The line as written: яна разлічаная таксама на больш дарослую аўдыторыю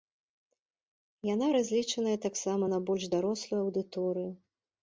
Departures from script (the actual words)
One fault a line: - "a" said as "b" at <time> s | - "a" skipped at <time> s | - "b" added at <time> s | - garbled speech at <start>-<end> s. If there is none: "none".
none